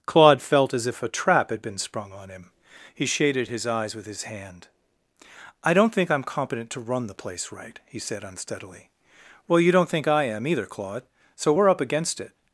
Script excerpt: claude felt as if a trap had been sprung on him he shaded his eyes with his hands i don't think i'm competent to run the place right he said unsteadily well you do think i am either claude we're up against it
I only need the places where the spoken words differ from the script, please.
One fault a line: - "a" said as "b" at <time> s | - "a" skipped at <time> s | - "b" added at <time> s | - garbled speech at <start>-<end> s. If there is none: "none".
- "hands" said as "hand" at 4.2 s
- "do" said as "don't" at 9.7 s
- "so" added at 11.3 s